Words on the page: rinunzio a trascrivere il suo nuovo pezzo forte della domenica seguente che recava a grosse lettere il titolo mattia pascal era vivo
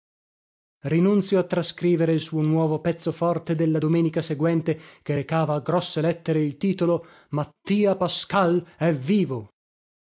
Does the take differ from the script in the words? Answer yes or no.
yes